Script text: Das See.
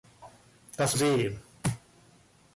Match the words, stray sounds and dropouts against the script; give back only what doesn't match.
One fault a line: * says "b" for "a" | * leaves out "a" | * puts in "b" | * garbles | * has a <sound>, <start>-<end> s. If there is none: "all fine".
all fine